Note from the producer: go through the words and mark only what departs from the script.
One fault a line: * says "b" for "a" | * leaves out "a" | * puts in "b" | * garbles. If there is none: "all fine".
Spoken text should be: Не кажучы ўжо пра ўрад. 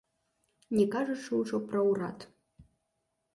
all fine